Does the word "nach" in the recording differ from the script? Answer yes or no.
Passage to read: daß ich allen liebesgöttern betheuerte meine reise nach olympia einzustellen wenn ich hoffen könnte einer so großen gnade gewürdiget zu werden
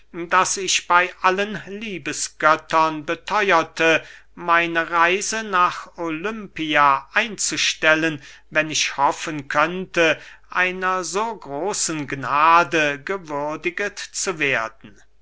no